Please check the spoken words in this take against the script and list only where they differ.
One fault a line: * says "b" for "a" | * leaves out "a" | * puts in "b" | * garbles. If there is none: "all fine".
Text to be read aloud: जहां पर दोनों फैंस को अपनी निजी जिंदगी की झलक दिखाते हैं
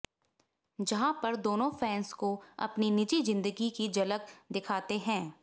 all fine